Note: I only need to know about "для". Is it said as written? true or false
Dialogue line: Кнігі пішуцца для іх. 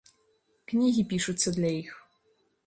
true